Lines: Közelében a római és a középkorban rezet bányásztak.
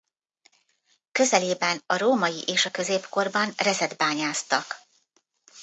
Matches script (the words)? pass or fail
pass